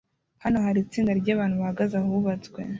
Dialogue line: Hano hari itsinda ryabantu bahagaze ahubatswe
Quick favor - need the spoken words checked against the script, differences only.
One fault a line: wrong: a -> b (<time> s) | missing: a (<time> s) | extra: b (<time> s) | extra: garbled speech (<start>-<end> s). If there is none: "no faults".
no faults